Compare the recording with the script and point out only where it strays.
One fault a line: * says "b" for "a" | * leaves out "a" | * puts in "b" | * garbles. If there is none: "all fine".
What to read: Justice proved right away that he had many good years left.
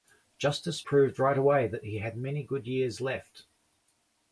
all fine